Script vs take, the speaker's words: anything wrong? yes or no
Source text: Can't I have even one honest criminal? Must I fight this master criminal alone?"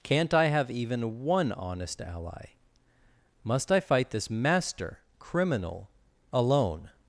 yes